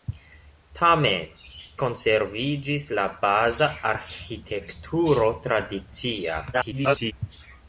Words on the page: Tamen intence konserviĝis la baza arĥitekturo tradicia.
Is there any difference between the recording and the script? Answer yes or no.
yes